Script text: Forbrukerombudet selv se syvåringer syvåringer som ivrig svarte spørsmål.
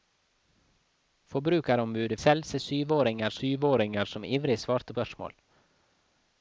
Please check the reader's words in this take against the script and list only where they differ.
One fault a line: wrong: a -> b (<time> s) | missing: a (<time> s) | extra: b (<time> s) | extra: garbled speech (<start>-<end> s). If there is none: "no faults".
no faults